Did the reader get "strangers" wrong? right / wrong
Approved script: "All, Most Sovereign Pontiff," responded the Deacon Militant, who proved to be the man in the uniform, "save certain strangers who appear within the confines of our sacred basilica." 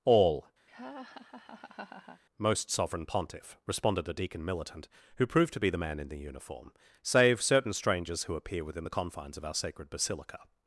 right